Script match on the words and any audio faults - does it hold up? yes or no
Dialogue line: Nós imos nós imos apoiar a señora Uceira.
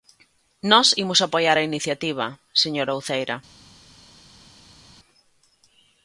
no